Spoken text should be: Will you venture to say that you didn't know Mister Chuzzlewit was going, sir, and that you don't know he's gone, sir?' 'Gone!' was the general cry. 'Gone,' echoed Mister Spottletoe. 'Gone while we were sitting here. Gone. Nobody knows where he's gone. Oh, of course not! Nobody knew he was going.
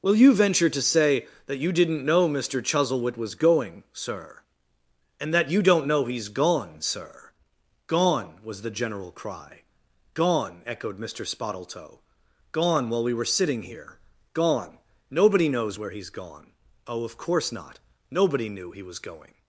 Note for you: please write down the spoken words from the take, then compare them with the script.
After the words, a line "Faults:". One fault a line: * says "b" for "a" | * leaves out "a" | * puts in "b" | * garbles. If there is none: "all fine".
Will you venture to say that you didn't know Mister Chuzzlewit was going, sir, and that you don't know he's gone, sir?' 'Gone!' was the general cry. 'Gone,' echoed Mister Spottletoe. 'Gone while we were sitting here. Gone. Nobody knows where he's gone. Oh, of course not! Nobody knew he was going.
Faults:
all fine